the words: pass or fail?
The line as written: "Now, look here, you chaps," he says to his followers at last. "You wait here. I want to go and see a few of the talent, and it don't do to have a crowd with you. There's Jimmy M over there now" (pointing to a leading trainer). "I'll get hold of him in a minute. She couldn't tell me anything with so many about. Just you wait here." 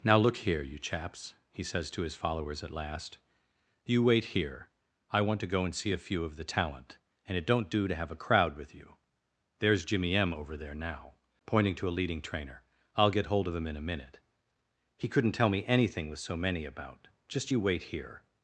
fail